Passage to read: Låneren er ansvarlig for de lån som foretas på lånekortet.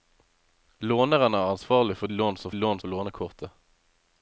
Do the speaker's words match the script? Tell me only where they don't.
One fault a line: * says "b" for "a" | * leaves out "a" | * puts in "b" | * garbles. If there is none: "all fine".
* leaves out "de"
* says "lån" for "foretas"